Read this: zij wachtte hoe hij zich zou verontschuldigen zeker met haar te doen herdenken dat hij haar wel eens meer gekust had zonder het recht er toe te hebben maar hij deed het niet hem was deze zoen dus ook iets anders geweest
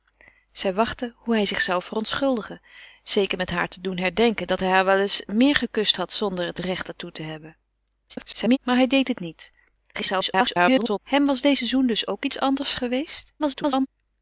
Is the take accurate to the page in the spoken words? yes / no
no